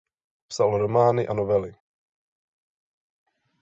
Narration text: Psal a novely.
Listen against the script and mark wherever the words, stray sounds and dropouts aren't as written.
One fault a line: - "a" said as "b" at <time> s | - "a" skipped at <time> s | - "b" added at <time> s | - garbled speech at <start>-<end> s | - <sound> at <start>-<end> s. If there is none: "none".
- "romány" added at 0.8 s